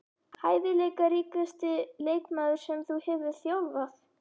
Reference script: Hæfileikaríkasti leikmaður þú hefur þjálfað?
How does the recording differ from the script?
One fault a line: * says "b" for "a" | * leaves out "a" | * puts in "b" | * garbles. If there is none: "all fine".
* puts in "sem"